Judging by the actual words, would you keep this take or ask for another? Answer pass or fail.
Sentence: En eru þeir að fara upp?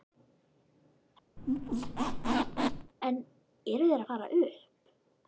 pass